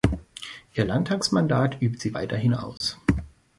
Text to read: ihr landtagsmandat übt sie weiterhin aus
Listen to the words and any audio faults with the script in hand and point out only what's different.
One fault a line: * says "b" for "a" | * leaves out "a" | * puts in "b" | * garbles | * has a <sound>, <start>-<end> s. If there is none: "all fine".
* has a dropout, 2.8-2.8 s